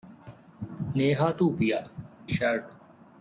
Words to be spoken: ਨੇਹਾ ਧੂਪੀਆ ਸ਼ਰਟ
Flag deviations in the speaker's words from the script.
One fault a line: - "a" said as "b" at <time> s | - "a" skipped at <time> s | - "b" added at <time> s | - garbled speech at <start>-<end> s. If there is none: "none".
none